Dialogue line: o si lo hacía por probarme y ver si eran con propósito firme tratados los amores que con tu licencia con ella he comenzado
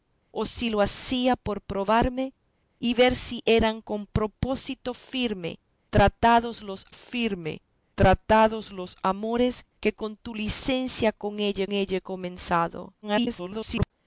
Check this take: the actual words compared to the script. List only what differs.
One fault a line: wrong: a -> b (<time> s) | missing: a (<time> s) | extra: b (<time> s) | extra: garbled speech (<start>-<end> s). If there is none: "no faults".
extra: firme tratados los (6.9 s)
extra: ella (11.7 s)
extra: garbled speech (13.0-13.9 s)